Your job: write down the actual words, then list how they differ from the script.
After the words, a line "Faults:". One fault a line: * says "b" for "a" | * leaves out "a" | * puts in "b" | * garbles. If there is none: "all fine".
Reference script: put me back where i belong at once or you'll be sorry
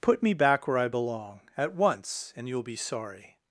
put me back where i belong at once and you'll be sorry
Faults:
* says "and" for "or"